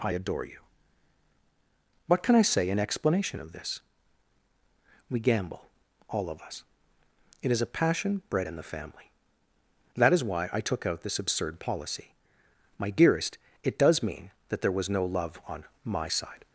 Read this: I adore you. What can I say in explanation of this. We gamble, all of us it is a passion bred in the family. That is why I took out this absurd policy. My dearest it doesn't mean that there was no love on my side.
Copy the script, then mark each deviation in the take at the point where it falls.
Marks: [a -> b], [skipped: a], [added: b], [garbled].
I adore you. What can I say in explanation of this. We gamble, all of us it is a passion bred in the family. That is why I took out this absurd policy. My dearest it [doesn't -> does] mean that there was no love on my side.